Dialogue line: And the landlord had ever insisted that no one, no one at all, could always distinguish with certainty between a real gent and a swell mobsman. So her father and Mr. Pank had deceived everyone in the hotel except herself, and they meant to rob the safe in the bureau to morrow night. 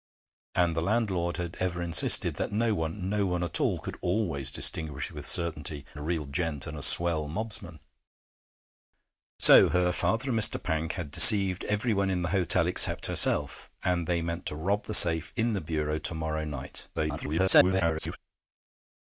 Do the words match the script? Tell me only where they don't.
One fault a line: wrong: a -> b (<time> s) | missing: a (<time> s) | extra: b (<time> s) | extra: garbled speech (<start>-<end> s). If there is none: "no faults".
missing: between (5.8 s)
extra: garbled speech (16.9-18.2 s)